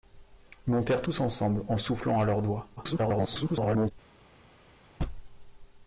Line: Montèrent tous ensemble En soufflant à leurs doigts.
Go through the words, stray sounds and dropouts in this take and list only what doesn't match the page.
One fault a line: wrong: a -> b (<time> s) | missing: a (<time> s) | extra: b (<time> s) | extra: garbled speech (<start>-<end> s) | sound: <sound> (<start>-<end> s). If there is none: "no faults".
extra: garbled speech (2.8-3.9 s)